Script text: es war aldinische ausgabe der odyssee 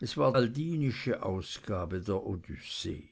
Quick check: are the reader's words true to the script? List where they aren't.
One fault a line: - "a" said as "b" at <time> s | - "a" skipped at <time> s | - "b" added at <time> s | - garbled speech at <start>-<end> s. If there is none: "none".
none